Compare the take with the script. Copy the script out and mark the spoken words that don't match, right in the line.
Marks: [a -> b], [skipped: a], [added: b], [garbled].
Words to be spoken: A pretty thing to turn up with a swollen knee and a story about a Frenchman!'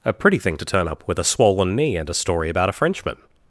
A pretty thing to turn up with a swollen knee and a story about a Frenchman!'